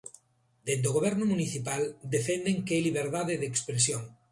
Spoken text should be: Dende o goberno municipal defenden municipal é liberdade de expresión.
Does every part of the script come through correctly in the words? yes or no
no